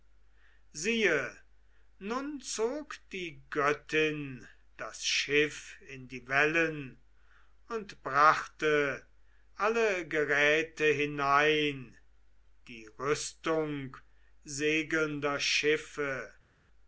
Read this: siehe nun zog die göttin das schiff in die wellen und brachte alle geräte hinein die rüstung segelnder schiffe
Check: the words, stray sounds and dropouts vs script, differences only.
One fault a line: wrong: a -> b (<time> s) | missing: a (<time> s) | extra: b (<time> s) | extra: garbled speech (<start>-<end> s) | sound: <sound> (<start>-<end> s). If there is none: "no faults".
no faults